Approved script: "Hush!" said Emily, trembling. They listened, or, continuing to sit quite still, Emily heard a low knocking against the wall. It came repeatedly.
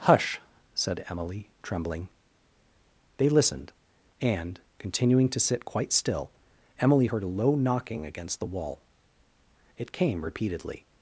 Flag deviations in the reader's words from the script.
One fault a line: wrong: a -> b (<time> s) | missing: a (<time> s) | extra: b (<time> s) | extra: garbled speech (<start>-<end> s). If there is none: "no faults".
wrong: or -> and (4.2 s)